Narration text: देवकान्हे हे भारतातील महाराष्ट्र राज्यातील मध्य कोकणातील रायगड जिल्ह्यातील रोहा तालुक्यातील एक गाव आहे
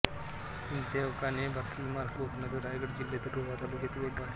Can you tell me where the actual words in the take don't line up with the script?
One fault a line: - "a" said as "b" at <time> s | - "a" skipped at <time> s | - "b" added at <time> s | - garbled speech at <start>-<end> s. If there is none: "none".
- "राज्यातील मध्य" skipped at 2.2 s
- "गाव" skipped at 4.2 s